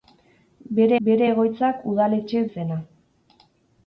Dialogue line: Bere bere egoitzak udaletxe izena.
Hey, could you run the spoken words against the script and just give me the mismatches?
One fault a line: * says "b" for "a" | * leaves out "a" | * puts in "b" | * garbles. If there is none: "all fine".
all fine